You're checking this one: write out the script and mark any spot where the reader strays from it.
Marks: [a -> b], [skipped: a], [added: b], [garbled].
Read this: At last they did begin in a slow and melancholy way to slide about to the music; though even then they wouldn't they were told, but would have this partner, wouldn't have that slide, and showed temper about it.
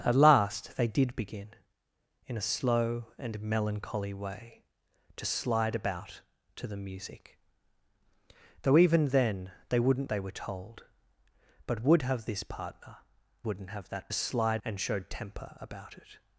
At last they did begin in a slow and melancholy way to slide about to the music; though even then they wouldn't they were told, but would have this partner, wouldn't have that slide, and showed temper about it.